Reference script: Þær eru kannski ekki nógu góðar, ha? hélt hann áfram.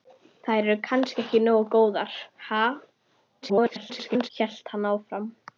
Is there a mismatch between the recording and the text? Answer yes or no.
yes